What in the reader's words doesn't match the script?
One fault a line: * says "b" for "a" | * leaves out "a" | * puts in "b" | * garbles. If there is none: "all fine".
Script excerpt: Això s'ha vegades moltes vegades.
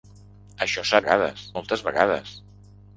all fine